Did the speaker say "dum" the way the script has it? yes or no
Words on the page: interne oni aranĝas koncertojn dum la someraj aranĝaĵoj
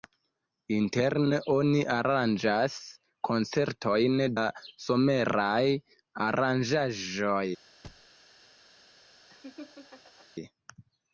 no